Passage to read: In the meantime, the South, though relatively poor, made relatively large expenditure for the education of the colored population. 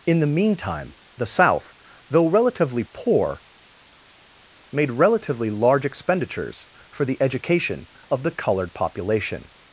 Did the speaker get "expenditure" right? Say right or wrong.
wrong